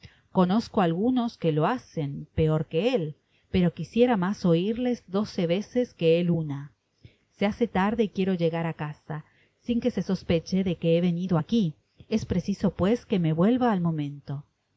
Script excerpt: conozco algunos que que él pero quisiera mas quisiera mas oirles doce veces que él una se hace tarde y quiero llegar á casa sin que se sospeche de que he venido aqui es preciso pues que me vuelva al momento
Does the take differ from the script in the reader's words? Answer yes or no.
yes